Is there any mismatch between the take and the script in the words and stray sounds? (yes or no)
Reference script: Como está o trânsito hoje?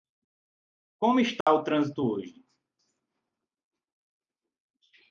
yes